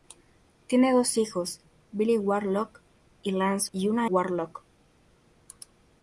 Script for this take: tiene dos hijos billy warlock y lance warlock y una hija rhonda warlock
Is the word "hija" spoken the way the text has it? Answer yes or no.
no